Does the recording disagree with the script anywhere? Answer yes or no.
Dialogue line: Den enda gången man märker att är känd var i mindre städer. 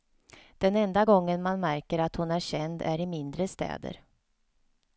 yes